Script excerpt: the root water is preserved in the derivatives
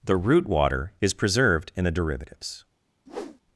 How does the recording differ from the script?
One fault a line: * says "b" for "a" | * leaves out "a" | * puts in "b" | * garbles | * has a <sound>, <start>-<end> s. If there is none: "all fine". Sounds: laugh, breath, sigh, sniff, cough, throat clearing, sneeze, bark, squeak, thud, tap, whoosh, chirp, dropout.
* has a whoosh, 3.1-3.4 s